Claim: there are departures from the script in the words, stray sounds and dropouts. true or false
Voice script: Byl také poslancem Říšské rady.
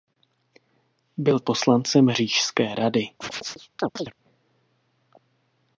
true